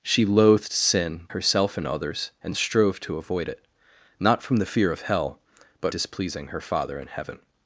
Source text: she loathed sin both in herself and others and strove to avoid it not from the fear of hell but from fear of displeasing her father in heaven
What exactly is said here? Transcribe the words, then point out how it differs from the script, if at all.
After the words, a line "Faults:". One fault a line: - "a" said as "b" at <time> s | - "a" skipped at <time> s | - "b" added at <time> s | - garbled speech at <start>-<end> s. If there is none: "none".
she loathed sin herself and others and strove to avoid it not from the fear of hell but displeasing her father in heaven
Faults:
- "both in" skipped at 1.3 s
- "from fear of" skipped at 5.9 s